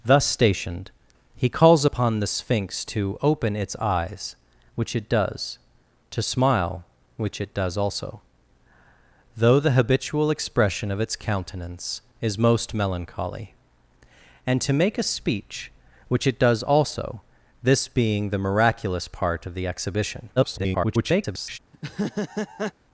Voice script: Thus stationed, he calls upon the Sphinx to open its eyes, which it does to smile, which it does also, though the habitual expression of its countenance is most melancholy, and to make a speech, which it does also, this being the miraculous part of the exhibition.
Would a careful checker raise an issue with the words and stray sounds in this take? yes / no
yes